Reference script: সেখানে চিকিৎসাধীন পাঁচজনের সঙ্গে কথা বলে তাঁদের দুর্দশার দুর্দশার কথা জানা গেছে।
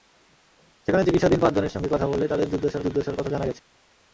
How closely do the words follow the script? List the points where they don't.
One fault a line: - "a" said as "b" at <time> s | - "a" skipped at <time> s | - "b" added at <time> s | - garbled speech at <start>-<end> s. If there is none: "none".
none